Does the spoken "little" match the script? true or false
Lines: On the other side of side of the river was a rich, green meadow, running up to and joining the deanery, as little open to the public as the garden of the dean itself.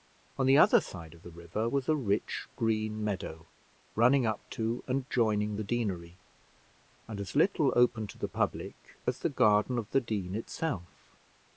true